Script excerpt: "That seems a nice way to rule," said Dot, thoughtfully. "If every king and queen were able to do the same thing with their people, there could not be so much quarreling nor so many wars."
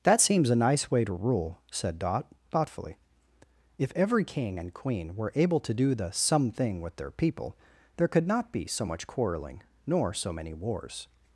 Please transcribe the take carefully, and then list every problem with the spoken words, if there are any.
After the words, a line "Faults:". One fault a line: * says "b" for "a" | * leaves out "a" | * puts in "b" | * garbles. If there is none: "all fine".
"That seems a nice way to rule," said Dot, thoughtfully. "If every king and queen were able to do the some thing with their people, there could not be so much quarreling nor so many wars."
Faults:
* says "some" for "same"